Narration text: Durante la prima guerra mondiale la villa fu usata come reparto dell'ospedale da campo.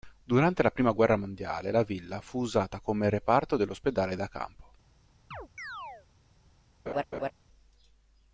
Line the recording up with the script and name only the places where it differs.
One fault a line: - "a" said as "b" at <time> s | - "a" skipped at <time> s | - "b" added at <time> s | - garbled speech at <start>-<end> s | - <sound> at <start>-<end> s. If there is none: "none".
- chirp at 5.3-6.1 s
- laugh at 6.9-7.3 s